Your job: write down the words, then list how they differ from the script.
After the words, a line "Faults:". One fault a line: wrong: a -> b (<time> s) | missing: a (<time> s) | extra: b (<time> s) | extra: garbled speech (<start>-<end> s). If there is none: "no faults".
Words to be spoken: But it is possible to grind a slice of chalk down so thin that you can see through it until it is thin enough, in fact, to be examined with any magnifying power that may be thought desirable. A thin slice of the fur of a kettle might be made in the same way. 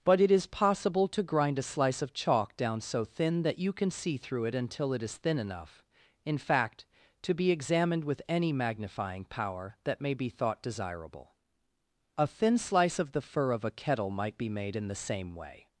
But it is possible to grind a slice of chalk down so thin that you can see through it until it is thin enough, in fact, to be examined with any magnifying power that may be thought desirable. A thin slice of the fur of a kettle might be made in the same way.
Faults:
no faults